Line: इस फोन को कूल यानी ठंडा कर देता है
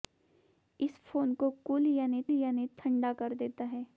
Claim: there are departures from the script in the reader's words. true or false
true